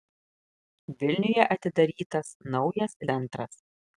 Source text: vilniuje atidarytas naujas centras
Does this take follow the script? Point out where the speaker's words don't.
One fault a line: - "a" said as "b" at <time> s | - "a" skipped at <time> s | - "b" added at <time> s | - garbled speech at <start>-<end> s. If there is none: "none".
none